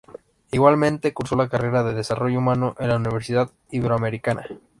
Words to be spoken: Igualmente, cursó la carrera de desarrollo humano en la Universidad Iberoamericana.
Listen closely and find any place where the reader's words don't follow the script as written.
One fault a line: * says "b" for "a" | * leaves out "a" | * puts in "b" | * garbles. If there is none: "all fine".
all fine